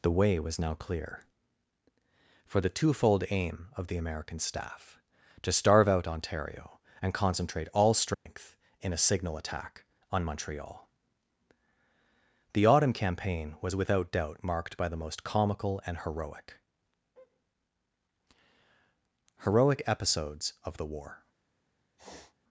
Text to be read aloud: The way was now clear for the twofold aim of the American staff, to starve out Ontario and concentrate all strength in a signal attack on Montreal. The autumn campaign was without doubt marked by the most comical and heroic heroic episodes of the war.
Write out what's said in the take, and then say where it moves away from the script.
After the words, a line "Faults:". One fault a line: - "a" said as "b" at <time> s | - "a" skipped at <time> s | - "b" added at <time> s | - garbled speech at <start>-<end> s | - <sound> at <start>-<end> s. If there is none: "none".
The way was now clear for the twofold aim of the American staff, to starve out Ontario and concentrate all strength in a signal attack on Montreal. The autumn campaign was without doubt marked by the most comical and heroic heroic episodes of the war.
Faults:
- dropout at 8.1-8.3 s
- sniff at 22.0-22.3 s